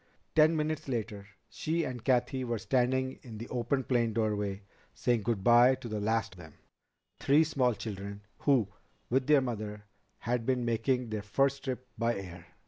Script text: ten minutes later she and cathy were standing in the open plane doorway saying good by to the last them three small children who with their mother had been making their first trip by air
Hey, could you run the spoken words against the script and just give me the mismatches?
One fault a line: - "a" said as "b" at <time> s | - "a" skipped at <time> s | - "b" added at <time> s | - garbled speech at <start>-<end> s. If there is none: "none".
none